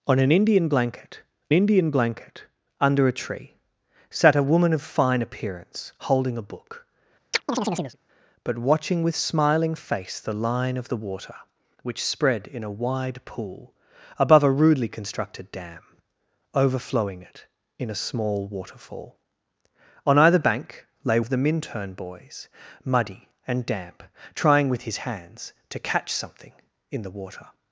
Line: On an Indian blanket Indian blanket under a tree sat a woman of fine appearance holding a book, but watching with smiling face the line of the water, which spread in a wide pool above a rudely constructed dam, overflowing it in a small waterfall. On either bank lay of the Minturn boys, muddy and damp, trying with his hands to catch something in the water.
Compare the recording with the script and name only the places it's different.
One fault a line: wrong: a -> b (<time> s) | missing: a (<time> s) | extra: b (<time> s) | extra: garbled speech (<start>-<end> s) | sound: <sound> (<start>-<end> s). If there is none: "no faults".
sound: chirp (7.3-8.0 s)